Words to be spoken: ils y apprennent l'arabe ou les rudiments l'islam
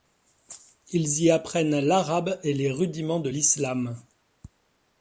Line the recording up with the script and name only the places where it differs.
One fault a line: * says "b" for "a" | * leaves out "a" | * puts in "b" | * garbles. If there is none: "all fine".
* says "et" for "ou"
* puts in "de"